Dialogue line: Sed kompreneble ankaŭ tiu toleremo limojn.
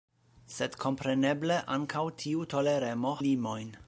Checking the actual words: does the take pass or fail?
pass